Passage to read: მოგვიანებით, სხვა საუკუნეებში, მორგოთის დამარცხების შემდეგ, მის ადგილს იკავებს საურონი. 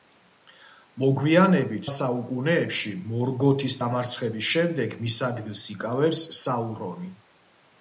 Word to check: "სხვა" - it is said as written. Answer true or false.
false